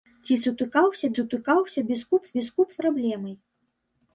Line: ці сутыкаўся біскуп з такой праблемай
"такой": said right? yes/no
no